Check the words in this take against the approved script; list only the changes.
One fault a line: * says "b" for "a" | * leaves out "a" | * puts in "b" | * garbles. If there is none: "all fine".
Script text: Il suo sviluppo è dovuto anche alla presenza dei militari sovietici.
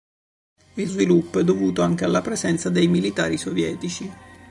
* leaves out "suo"